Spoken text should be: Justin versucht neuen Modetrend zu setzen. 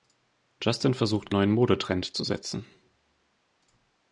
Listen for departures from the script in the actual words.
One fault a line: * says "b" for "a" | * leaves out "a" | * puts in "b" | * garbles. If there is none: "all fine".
all fine